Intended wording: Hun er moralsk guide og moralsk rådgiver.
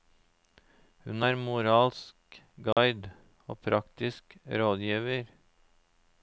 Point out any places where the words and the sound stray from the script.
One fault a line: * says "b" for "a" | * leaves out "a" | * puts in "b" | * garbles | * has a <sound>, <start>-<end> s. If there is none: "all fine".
* has a dropout, 2.7-2.8 s
* says "praktisk" for "moralsk"